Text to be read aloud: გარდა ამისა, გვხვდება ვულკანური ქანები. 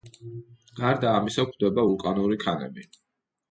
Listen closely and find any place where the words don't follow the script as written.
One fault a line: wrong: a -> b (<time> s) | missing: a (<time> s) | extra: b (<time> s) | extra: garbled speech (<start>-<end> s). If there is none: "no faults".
no faults